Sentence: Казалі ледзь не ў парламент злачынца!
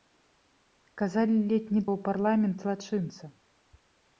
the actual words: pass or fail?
pass